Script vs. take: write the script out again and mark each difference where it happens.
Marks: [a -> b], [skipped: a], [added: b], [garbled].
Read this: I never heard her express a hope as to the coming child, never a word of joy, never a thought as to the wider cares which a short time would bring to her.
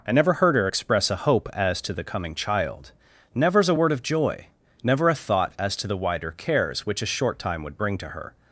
I never heard her express a hope as to the coming child, [never -> nevers] a word of joy, never a thought as to the wider cares which a short time would bring to her.